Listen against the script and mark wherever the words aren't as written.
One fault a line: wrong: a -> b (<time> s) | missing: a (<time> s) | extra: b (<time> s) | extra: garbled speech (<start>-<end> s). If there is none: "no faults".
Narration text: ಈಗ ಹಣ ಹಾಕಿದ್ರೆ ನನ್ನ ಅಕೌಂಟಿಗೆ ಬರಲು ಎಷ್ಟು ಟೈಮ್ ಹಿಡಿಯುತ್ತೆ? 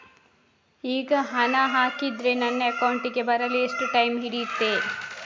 no faults